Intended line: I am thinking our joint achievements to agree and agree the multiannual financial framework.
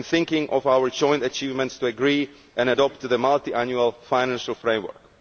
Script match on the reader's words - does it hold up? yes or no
no